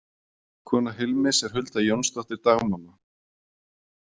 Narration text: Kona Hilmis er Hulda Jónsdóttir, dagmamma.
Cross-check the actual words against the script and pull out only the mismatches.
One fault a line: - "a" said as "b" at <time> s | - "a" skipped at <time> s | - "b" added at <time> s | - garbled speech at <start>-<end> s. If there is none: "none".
none